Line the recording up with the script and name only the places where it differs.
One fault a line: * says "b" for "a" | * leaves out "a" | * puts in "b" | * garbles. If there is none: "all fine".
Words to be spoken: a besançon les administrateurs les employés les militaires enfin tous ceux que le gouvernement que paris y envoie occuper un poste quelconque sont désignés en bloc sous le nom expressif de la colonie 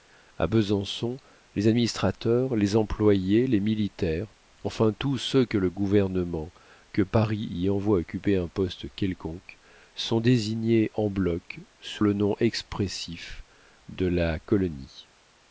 all fine